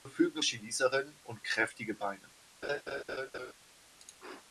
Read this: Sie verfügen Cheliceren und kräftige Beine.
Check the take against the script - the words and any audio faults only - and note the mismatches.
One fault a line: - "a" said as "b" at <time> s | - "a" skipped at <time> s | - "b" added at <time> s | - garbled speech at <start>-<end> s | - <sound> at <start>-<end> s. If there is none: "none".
- laugh at 2.6-3.5 s